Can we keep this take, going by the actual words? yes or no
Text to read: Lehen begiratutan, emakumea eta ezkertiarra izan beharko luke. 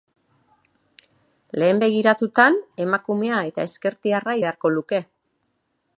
no